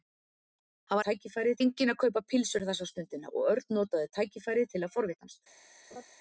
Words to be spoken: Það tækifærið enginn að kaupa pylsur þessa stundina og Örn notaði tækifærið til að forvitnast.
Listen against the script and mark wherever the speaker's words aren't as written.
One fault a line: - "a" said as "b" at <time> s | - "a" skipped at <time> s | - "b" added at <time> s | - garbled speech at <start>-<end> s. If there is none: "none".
none